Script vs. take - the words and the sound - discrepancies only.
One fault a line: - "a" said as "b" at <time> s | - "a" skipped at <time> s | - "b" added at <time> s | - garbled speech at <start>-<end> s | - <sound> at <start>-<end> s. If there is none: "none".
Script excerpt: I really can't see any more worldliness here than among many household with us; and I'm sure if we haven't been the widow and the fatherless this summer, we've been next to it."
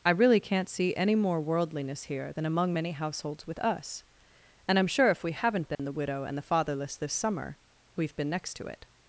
- "household" said as "households" at 2.9 s
- dropout at 5.7-5.8 s